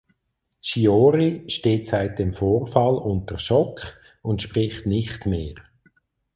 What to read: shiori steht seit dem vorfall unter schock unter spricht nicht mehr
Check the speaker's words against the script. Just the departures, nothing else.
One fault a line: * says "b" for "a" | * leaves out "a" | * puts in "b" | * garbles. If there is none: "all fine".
* says "und" for "unter"